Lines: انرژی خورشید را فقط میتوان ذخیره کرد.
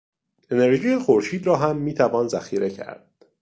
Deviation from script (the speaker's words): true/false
true